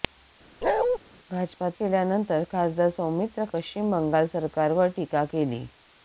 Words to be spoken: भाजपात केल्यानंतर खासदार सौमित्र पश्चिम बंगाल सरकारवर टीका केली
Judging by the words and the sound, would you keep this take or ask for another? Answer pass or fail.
fail